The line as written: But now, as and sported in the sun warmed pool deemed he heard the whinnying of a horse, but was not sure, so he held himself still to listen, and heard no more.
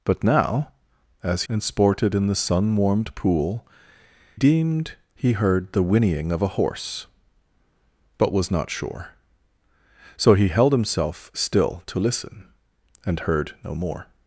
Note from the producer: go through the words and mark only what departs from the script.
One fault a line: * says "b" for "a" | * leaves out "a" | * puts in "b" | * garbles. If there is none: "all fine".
all fine